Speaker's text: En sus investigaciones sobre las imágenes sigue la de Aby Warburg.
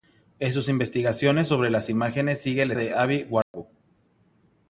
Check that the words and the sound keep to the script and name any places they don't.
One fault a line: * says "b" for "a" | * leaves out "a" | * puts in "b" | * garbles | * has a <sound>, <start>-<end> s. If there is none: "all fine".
* has a dropout, 3.4-3.5 s